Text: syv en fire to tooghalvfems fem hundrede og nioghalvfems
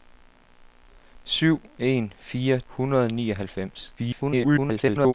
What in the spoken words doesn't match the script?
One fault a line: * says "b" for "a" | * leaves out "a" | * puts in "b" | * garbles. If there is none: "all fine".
* leaves out "to tooghalvfems fem"
* garbles